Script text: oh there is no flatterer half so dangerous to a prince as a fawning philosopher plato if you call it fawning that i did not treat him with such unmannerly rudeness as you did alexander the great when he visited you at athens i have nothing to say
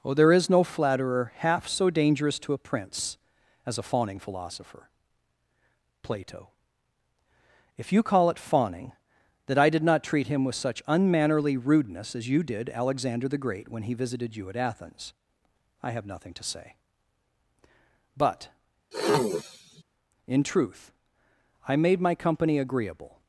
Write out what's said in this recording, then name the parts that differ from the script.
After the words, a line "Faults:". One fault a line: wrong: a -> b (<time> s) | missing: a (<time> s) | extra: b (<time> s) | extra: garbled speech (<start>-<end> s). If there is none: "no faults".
oh there is no flatterer half so dangerous to a prince as a fawning philosopher plato if you call it fawning that i did not treat him with such unmannerly rudeness as you did alexander the great when he visited you at athens i have nothing to say but in truth i made my company agreeable
Faults:
extra: but in truth i made my company agreeable (18.2 s)